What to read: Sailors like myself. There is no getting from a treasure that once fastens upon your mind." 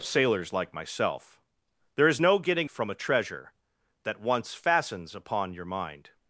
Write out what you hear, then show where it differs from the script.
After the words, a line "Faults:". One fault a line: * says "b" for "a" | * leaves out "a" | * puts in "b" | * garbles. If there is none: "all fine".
Sailors like myself. There is no getting from a treasure that once fastens upon your mind."
Faults:
all fine